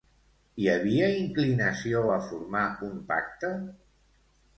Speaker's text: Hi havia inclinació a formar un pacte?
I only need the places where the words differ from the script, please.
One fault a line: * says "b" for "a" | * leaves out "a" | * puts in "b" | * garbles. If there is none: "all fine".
all fine